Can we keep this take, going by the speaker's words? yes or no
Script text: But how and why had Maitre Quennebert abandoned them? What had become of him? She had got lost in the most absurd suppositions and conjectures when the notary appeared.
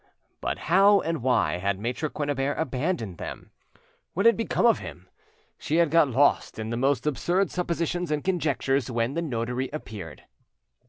yes